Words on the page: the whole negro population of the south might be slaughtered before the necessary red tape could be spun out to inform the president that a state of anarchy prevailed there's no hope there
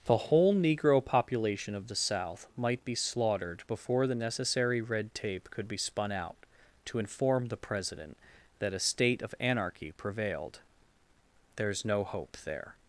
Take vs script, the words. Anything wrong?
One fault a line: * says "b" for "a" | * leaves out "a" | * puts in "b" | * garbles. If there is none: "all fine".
all fine